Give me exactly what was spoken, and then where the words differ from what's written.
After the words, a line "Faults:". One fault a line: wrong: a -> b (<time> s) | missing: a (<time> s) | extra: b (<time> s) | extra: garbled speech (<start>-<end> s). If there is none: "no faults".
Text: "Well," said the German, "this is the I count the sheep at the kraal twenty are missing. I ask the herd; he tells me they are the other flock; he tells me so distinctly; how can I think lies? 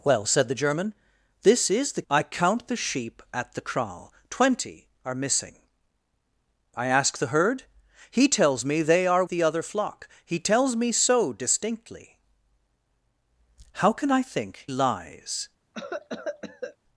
"Well," said the German, "this is the I count the sheep at the kraal twenty are missing. I ask the herd; he tells me they are the other flock; he tells me so distinctly; how can I think lies?
Faults:
no faults